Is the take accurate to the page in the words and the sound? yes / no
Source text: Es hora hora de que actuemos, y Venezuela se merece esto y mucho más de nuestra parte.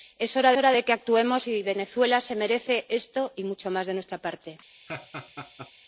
no